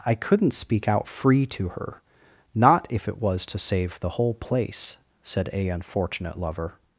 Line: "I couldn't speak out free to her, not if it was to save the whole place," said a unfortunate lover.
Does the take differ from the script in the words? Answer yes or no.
no